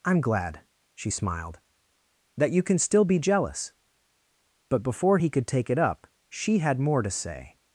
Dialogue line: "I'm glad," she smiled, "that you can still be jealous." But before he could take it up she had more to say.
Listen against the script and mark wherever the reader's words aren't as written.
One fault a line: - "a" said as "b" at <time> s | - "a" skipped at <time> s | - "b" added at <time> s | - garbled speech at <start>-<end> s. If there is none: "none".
none